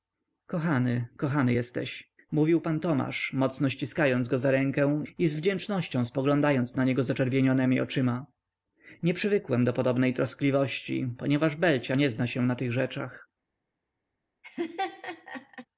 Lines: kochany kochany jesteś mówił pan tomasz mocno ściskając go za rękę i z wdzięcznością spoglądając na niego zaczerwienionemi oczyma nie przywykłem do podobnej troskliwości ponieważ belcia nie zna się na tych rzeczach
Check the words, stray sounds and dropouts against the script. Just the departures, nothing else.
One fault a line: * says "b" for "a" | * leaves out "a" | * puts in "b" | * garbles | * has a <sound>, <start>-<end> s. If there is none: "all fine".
* has a laugh, 14.4-15.7 s